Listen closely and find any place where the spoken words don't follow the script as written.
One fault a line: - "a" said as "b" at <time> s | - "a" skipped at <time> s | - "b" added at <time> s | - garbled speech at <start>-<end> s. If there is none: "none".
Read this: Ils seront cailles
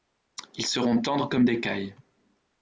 - "tendres comme des" added at 1.0 s